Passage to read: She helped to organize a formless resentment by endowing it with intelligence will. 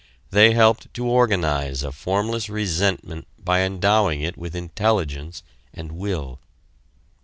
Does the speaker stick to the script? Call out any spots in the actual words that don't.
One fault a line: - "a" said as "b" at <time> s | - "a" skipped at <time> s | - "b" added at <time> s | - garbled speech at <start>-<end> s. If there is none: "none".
- "She" said as "They" at 0.3 s
- "and" added at 5.8 s